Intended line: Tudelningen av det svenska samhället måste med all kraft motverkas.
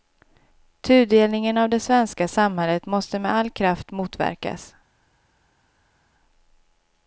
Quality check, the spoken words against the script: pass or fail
pass